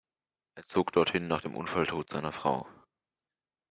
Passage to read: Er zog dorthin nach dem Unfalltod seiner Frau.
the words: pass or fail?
pass